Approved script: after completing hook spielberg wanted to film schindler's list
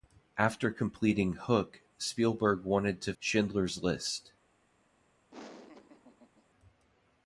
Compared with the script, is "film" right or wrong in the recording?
wrong